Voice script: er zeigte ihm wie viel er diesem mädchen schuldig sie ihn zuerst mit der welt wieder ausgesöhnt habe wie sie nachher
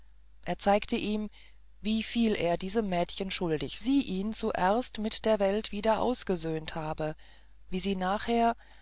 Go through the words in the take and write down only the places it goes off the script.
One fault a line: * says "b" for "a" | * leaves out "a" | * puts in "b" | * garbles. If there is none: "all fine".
all fine